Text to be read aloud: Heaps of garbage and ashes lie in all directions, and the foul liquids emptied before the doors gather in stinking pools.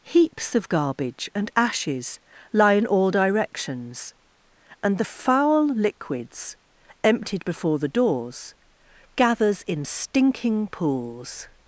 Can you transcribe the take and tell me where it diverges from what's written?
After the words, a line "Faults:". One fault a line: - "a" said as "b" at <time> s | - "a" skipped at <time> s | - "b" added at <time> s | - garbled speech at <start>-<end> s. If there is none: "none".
Heaps of garbage and ashes lie in all directions, and the foul liquids emptied before the doors gathers in stinking pools.
Faults:
- "gather" said as "gathers" at 9.2 s